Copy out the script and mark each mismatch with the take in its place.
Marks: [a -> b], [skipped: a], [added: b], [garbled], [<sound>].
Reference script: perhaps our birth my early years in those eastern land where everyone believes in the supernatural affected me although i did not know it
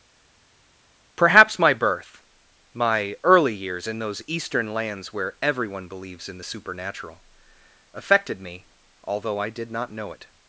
perhaps [our -> my] birth my early years in those eastern [land -> lands] where everyone believes in the supernatural affected me although i did not know it